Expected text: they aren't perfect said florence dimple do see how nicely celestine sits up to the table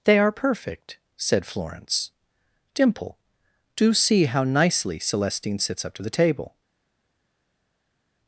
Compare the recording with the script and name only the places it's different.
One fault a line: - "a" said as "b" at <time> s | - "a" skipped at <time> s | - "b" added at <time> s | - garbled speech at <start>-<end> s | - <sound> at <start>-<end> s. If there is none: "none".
- "aren't" said as "are" at 0.2 s